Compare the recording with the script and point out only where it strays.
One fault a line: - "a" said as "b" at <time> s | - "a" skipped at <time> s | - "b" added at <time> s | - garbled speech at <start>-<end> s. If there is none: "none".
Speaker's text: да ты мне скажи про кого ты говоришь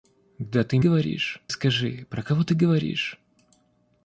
- "мне" said as "говоришь" at 0.8 s